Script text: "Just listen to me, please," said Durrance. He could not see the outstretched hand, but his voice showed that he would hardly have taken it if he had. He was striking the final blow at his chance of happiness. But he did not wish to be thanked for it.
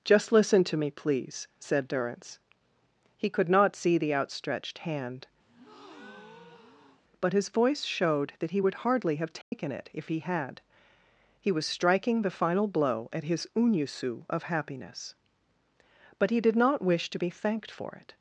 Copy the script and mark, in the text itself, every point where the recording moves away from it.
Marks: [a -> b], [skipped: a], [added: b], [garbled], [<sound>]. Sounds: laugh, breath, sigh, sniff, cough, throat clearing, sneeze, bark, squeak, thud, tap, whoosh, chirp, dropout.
"Just listen to me, please," said Durrance. He could not see the outstretched hand, [breath] but his voice showed that he would hardly have taken [dropout] it if he had. He was striking the final blow at his [chance -> unusu] of happiness. But he did not wish to be thanked for it.